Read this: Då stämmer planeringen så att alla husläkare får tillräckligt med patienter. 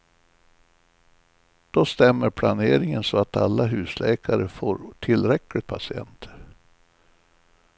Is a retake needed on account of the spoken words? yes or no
yes